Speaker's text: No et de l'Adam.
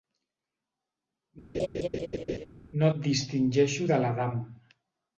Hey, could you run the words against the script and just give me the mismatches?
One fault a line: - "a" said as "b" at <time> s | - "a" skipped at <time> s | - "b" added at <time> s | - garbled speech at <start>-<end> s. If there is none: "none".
- "distingeixo" added at 3.1 s